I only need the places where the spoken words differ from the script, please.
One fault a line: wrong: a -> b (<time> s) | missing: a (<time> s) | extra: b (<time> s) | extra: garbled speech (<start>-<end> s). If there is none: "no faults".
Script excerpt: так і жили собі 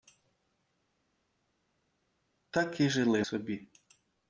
no faults